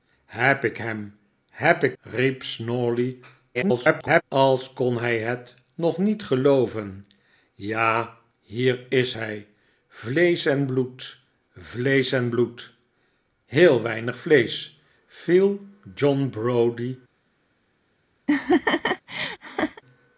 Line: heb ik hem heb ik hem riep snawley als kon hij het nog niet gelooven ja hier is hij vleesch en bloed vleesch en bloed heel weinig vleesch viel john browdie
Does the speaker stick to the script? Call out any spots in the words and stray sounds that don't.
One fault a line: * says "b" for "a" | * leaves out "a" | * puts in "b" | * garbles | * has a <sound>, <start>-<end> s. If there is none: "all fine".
* leaves out "hem"
* garbles
* has a laugh, 18.3-19.8 s